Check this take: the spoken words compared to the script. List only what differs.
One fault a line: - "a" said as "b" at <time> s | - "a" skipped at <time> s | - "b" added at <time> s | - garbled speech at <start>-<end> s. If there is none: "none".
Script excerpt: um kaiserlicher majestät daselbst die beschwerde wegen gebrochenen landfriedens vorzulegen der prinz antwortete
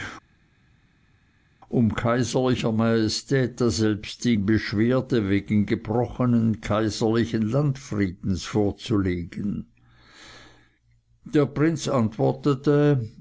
- "kaiserlichen" added at 6.6 s